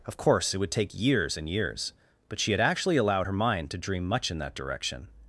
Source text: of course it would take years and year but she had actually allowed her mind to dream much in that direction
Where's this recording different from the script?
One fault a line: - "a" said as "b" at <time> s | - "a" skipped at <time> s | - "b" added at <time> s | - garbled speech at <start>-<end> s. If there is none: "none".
- "year" said as "years" at 1.5 s